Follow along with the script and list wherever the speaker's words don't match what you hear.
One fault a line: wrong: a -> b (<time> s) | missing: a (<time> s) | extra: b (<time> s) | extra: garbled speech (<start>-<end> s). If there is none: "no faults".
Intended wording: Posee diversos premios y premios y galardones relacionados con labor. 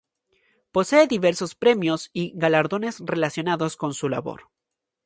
missing: premios y (2.3 s)
extra: su (3.9 s)